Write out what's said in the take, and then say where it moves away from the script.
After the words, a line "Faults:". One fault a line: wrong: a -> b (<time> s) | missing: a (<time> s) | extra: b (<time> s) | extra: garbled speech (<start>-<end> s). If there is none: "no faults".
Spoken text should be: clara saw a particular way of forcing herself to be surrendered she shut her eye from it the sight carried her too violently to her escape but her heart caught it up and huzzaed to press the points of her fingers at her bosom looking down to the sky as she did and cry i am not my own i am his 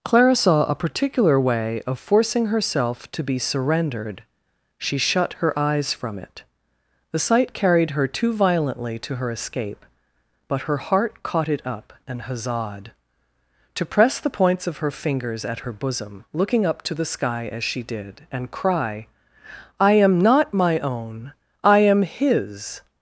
clara saw a particular way of forcing herself to be surrendered she shut her eyes from it the sight carried her too violently to her escape but her heart caught it up and huzzaed to press the points of her fingers at her bosom looking up to the sky as she did and cry i am not my own i am his
Faults:
wrong: eye -> eyes (5.6 s)
wrong: down -> up (16.7 s)